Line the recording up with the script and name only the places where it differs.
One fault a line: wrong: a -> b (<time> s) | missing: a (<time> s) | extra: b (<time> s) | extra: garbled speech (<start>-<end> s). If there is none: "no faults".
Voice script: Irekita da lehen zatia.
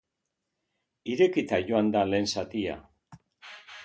extra: joan (1.7 s)